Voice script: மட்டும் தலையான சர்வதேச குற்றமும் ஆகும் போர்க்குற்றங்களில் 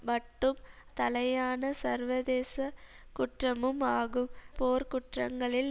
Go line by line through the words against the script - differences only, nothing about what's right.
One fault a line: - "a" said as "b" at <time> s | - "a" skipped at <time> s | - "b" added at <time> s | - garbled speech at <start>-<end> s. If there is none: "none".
none